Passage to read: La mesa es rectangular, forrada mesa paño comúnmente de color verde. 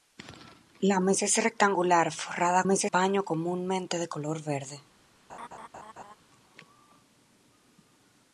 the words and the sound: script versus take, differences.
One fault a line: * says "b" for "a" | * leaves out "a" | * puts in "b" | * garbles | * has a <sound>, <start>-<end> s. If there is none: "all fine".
* has a laugh, 5.3-6.1 s